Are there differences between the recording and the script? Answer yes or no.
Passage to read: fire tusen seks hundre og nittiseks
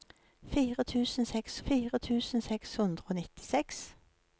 yes